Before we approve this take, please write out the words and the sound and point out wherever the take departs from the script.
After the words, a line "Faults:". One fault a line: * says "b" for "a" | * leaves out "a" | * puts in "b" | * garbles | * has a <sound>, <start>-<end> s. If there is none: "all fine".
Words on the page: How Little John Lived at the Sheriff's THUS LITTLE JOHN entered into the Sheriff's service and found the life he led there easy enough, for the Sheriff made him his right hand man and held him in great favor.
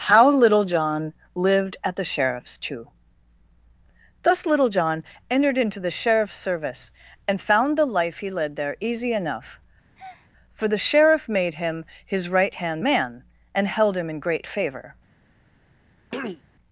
How Little John Lived at the Sheriff's too THUS LITTLE JOHN entered into the Sheriff's service and found the life he led there easy enough, for the Sheriff made him his right hand man and held him in great favor.
Faults:
* puts in "too"
* has a breath, 10.0-10.3 s
* has a throat clearing, 16.1-16.4 s